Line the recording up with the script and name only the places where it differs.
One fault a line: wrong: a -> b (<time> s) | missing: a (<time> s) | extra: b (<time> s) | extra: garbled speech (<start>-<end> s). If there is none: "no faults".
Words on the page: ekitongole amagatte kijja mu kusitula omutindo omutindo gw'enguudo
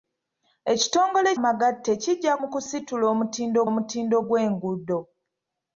no faults